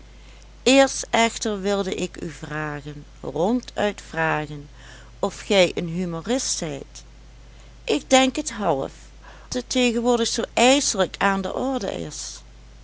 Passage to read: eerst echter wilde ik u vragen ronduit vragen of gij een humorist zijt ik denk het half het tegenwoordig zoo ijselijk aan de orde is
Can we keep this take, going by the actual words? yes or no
yes